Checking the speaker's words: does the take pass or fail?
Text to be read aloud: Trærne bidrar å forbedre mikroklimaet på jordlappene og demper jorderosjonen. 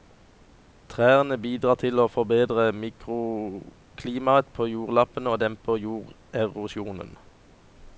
fail